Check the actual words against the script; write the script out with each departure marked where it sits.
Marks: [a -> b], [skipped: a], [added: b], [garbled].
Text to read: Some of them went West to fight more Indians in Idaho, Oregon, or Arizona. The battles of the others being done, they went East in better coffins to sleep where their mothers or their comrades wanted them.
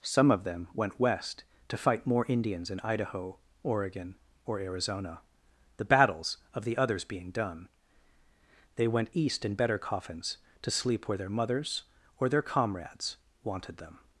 Some of them went West to fight more Indians in Idaho, Oregon, or Arizona. The battles of the others being done, they went East in better coffins to sleep where their mothers or their comrades wanted them.